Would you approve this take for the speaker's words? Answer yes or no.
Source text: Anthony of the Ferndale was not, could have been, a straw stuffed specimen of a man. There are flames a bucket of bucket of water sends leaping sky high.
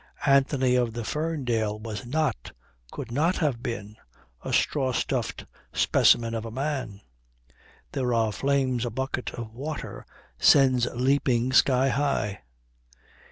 no